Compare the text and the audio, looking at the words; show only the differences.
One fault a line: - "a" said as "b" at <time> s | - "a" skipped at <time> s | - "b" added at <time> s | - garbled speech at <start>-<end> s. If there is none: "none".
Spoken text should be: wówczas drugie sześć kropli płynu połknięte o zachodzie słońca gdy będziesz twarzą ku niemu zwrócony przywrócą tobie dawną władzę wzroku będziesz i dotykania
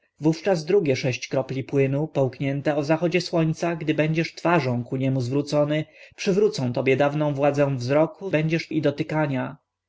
none